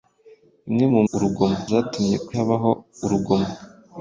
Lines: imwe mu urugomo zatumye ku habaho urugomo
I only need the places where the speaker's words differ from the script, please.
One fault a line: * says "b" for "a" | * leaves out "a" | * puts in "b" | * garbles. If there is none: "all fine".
all fine